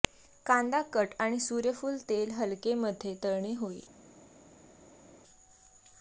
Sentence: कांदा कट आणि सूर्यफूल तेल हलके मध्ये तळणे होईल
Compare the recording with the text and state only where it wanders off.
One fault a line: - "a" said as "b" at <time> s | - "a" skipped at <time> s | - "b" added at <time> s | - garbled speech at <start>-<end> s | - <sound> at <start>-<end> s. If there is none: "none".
none